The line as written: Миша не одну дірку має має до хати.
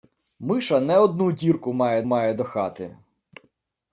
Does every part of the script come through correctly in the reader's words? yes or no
yes